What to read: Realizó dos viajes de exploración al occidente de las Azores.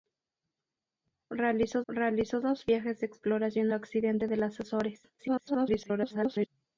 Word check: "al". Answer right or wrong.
wrong